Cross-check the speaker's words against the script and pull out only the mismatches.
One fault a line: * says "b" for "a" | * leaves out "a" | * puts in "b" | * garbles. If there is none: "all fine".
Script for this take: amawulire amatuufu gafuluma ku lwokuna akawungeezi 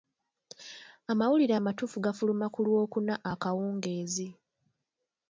all fine